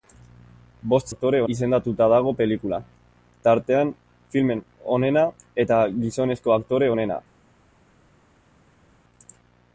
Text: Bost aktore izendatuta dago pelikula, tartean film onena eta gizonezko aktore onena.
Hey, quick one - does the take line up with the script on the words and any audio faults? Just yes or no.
yes